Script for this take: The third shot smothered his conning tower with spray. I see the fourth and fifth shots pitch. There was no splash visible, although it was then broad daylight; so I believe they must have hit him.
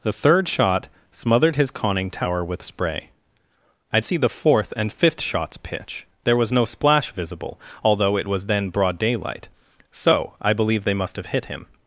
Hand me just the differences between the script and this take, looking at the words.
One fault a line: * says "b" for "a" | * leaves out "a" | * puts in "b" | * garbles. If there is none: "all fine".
all fine